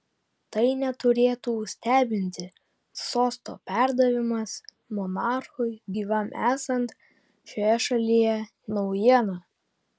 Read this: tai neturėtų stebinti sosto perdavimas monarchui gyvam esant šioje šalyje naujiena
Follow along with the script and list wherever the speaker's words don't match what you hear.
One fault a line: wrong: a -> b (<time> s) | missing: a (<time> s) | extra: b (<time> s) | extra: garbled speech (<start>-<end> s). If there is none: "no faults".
no faults